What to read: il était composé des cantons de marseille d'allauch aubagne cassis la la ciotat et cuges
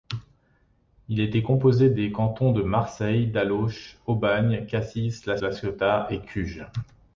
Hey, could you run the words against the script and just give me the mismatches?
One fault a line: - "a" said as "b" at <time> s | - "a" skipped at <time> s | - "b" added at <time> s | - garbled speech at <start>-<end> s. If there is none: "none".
none